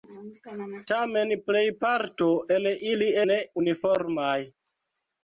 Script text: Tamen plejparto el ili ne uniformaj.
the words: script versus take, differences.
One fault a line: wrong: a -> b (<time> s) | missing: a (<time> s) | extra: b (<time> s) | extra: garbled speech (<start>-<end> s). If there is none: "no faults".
no faults